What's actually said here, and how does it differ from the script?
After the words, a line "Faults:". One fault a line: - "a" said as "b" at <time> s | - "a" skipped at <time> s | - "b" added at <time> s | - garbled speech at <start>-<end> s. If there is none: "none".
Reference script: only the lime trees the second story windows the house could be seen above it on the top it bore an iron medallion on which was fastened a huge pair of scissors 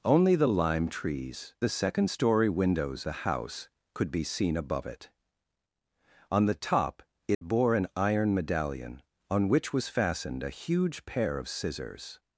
only the lime trees the second story windows the house could be seen above it on the top it bore an iron medallion on which was fastened a huge pair of scissors
Faults:
none